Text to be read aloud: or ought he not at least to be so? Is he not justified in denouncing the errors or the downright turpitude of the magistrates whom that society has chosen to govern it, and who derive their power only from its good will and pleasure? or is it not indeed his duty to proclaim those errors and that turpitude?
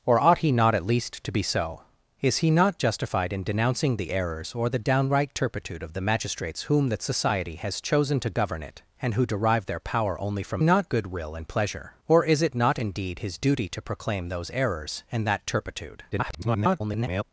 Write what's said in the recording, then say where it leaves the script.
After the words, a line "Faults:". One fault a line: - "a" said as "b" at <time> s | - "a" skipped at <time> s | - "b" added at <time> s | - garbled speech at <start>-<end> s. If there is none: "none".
or ought he not at least to be so? Is he not justified in denouncing the errors or the downright turpitude of the magistrates whom that society has chosen to govern it, and who derive their power only from not good will and pleasure? or is it not indeed his duty to proclaim those errors and that turpitude? [garbled]
Faults:
- "its" said as "not" at 10.6 s
- garbled speech at 16.1-17.2 s